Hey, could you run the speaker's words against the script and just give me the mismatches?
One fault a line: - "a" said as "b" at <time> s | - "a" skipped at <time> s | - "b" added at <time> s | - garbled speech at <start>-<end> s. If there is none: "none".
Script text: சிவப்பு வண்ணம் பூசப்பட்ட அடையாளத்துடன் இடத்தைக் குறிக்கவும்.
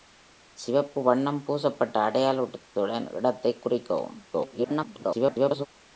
- garbled speech at 4.3-5.7 s